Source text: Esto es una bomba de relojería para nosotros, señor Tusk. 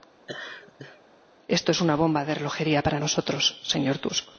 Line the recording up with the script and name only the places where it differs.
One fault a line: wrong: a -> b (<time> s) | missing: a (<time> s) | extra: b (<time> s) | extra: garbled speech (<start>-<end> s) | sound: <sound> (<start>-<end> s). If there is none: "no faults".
sound: laugh (0.3-1.0 s)